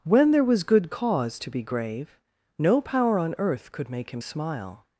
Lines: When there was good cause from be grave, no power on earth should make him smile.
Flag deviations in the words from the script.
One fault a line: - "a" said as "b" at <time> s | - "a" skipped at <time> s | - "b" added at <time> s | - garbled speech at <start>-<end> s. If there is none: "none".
- "from" said as "to" at 1.4 s
- "should" said as "could" at 3.7 s